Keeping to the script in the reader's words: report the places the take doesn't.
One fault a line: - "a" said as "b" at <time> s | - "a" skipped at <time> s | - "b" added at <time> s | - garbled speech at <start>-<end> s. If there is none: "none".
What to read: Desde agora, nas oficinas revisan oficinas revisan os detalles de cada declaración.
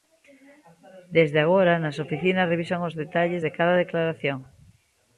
- "oficinas revisan" skipped at 2.8 s